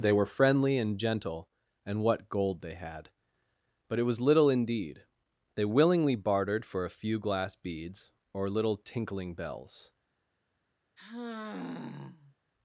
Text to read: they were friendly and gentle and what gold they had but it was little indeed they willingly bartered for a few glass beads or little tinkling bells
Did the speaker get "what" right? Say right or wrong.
right